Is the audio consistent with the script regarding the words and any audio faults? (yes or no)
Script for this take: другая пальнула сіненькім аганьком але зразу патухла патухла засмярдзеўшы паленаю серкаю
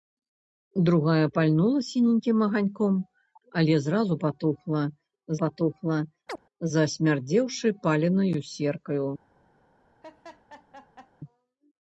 no